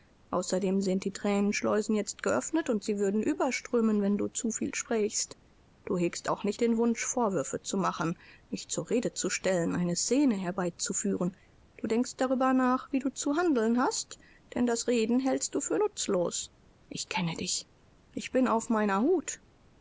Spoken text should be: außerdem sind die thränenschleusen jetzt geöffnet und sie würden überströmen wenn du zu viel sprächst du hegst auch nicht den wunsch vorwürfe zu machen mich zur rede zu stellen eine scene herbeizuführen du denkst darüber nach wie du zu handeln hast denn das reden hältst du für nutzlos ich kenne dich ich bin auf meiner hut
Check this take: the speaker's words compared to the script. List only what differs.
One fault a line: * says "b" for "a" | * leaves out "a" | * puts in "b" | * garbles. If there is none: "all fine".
all fine